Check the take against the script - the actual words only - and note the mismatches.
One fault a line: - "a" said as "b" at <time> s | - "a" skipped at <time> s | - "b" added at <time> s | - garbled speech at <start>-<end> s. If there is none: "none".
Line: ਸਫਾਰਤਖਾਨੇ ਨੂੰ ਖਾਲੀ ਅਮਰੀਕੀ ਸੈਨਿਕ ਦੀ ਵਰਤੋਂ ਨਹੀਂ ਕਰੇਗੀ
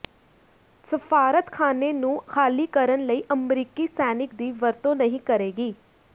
- "ਕਰਨ ਲਈ" added at 2.7 s